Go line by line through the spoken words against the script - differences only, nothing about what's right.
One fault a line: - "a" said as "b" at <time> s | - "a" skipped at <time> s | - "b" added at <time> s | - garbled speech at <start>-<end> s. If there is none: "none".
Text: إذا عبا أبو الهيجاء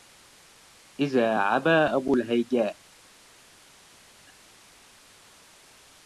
none